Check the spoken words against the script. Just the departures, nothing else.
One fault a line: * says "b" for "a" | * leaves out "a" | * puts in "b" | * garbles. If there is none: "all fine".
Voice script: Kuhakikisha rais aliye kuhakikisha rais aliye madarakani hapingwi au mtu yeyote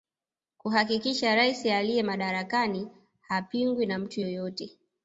* leaves out "kuhakikisha rais aliye"
* says "na" for "au"